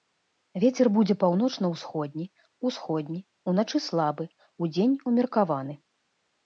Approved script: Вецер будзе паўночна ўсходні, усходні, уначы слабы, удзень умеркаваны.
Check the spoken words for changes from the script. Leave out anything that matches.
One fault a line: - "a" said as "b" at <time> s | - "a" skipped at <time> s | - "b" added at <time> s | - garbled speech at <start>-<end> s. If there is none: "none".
none